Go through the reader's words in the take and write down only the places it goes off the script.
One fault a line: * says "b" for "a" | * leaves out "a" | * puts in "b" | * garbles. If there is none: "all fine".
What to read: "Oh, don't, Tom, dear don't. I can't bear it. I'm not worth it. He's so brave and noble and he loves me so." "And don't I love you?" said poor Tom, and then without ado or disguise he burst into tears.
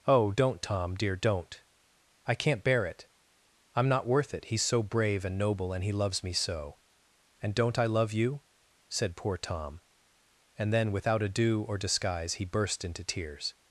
all fine